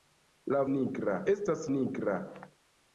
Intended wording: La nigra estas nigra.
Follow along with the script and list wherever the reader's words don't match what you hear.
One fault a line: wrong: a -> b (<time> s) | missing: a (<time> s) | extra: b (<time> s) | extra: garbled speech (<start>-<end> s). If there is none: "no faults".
no faults